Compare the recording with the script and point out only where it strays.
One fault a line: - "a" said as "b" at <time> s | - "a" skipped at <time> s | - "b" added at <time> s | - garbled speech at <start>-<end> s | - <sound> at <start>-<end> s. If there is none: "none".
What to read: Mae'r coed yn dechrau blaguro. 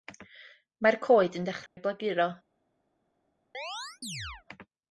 - dropout at 1.7-1.8 s
- chirp at 3.5-4.4 s